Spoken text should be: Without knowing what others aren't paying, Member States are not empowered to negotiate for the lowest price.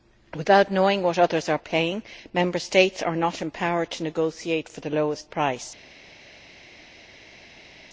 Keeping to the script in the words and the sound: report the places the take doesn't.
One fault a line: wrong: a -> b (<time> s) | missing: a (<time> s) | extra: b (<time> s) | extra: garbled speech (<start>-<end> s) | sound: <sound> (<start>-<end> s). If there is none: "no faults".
wrong: aren't -> are (1.5 s)